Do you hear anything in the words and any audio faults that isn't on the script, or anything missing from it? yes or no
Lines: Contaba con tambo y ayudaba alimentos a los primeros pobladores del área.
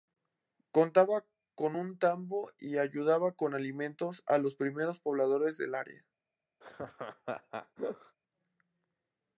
yes